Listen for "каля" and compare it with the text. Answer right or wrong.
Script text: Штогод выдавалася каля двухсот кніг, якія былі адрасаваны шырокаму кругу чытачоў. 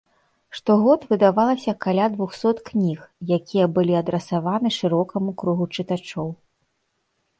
right